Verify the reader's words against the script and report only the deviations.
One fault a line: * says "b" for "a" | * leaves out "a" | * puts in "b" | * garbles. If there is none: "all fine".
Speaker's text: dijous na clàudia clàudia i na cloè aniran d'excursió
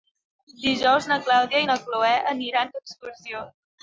* leaves out "clàudia"